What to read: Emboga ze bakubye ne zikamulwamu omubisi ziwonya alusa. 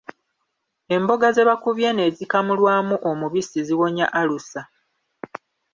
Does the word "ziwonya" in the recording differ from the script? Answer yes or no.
no